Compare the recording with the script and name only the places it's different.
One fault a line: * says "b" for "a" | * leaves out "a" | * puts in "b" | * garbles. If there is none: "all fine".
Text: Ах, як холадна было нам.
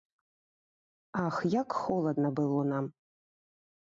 all fine